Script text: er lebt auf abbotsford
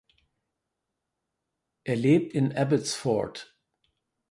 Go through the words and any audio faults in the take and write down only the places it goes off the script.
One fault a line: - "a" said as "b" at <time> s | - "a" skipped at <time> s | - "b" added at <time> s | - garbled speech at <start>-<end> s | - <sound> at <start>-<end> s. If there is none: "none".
- "auf" said as "in" at 2.3 s